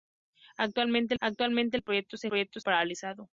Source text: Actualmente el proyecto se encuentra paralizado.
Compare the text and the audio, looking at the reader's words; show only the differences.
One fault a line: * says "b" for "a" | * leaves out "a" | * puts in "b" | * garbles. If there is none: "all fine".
* puts in "actualmente"
* says "proyecto" for "encuentra"